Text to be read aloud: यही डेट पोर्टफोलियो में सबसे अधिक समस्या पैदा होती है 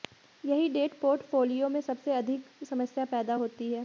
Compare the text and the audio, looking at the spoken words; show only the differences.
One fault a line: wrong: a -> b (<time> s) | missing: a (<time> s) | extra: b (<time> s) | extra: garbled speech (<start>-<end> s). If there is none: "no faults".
no faults